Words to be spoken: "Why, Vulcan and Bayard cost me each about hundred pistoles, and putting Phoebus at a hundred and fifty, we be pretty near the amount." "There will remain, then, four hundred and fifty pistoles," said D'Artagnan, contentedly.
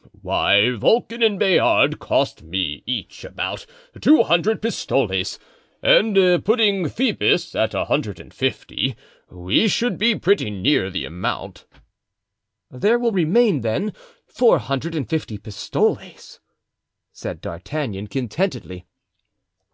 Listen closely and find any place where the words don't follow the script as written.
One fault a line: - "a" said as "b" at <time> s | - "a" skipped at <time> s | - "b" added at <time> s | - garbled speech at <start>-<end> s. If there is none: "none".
- "two" added at 4.0 s
- "should" added at 9.7 s